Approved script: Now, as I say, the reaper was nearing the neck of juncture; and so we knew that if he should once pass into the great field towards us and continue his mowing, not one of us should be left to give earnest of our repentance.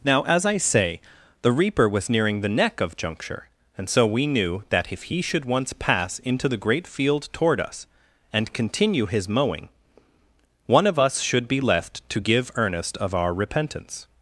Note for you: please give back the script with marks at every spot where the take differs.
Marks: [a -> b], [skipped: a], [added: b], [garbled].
Now, as I say, the reaper was nearing the neck of juncture; and so we knew that if he should once pass into the great field [towards -> toward] us and continue his mowing, [skipped: not] one of us should be left to give earnest of our repentance.